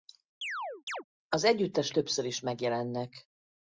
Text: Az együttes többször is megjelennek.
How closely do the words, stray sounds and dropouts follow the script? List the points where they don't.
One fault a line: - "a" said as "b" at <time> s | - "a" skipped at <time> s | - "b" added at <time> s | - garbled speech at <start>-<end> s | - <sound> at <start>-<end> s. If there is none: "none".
- chirp at 0.4-1.0 s